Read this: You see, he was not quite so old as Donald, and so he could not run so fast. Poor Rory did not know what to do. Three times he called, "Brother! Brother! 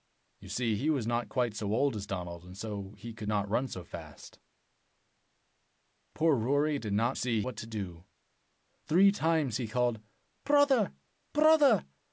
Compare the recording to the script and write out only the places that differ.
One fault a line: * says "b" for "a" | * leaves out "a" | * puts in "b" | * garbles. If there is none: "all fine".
* says "see" for "know"